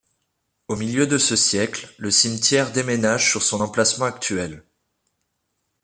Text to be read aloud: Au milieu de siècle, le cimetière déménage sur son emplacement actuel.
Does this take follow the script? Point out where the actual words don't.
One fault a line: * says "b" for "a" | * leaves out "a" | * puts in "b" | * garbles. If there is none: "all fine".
* puts in "ce"